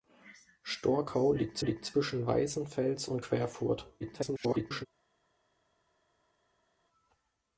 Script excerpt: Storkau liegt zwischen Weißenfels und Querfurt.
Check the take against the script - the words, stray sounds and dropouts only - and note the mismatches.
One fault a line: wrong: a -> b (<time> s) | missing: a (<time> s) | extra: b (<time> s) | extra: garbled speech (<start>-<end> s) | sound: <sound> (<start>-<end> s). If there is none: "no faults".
extra: liegt (1.6 s)
extra: garbled speech (4.0-4.9 s)